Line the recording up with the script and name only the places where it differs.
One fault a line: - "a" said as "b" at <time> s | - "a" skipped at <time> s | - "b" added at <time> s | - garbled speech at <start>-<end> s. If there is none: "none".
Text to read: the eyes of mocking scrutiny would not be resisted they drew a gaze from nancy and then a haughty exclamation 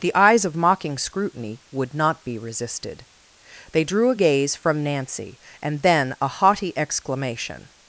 none